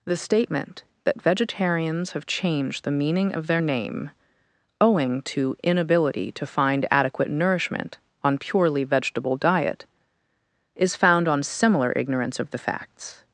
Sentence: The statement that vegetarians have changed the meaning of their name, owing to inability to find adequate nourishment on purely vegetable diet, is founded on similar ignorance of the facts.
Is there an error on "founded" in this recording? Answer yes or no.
yes